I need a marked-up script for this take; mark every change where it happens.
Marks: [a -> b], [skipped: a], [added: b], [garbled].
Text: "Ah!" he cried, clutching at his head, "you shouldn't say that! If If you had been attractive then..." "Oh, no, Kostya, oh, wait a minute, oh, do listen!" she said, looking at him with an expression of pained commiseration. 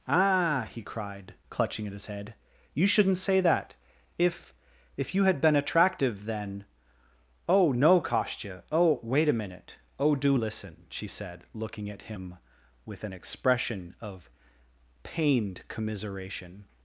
"Ah!" he cried, clutching at his head, "you shouldn't say that! If If you had been attractive then..." "Oh, no, Kostya, oh, wait a minute, oh, do listen!" she said, looking at him with an expression of pained commiseration.